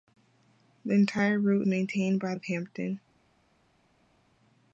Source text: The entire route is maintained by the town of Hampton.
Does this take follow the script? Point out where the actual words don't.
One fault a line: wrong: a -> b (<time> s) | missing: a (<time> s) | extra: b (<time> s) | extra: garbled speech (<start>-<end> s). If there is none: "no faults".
missing: is (1.7 s)
missing: the town (2.3 s)